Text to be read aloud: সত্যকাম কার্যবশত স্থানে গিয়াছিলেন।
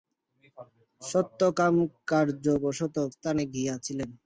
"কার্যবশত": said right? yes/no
yes